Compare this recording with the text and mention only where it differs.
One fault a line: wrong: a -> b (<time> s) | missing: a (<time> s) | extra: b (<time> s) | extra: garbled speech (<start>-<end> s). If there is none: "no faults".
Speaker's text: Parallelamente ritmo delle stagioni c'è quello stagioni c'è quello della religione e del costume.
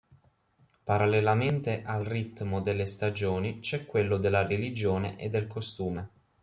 extra: al (1.8 s)
missing: stagioni c'è quello (4.2 s)